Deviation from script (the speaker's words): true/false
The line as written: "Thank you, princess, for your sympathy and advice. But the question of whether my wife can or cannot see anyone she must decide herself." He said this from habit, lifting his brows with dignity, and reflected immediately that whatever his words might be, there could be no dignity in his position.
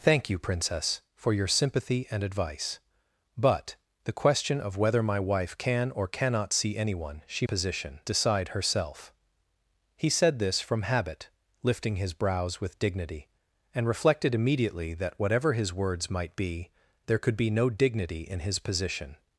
true